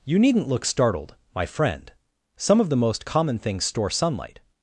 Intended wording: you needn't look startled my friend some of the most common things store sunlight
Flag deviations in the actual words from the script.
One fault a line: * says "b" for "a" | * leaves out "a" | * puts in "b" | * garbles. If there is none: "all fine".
all fine